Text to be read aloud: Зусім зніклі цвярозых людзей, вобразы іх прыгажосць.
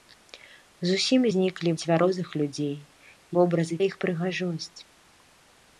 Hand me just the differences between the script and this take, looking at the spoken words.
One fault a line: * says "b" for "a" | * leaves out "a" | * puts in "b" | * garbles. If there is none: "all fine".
all fine